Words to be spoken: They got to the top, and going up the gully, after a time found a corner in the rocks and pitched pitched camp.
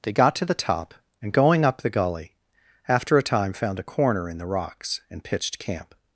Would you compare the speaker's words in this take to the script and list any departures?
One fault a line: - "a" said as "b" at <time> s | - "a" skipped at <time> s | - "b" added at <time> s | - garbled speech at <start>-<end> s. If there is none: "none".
- "pitched" skipped at 5.6 s